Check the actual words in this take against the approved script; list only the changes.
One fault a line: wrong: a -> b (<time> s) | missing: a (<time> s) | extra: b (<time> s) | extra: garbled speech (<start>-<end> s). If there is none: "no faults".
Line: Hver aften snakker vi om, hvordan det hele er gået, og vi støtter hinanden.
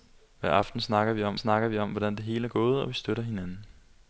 extra: snakker vi om (1.3 s)